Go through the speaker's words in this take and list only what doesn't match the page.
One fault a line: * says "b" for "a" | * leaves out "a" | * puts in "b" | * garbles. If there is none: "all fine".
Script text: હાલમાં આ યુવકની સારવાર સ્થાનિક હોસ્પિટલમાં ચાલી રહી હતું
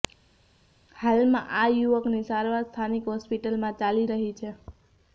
* says "છે" for "હતું"